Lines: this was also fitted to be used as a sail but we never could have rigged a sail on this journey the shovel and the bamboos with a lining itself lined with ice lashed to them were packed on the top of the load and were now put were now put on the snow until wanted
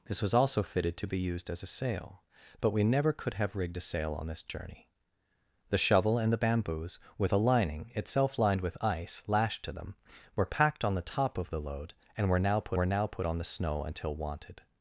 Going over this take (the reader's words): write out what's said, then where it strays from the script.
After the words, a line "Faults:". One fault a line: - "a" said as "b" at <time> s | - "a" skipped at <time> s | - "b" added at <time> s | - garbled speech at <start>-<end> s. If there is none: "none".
this was also fitted to be used as a sail but we never could have rigged a sail on this journey the shovel and the bamboos with a lining itself lined with ice lashed to them were packed on the top of the load and were now put were now put on the snow until wanted
Faults:
none